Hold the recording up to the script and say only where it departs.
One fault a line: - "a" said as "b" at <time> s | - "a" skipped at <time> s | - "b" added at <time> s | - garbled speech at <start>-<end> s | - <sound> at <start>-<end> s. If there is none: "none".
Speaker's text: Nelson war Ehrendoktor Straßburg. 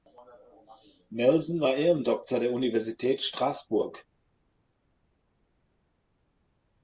- "der Universität" added at 2.4 s